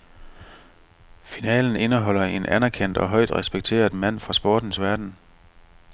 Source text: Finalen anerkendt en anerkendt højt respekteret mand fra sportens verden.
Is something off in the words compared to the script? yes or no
yes